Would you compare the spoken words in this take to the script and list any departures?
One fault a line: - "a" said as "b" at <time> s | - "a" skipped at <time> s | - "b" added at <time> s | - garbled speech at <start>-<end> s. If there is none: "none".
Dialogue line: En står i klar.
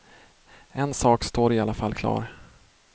- "sak" added at 0.9 s
- "alla fall" added at 1.6 s